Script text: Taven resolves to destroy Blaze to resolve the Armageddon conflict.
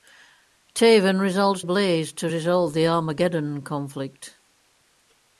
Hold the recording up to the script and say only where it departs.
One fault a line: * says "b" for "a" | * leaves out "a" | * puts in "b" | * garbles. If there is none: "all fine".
* leaves out "to destroy"